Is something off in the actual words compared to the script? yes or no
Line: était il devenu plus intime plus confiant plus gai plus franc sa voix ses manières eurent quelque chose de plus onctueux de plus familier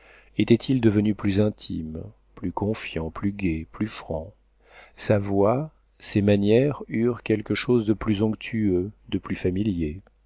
no